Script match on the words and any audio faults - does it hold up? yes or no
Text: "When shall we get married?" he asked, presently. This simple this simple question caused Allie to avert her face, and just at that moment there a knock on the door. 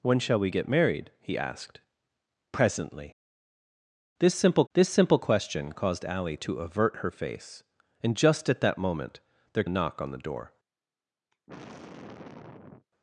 no